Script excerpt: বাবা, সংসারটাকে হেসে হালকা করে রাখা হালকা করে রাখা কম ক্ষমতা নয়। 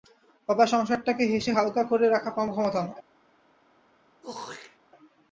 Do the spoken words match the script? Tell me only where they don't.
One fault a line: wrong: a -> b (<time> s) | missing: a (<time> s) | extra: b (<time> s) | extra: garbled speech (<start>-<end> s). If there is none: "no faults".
missing: হালকা করে রাখা (2.3 s)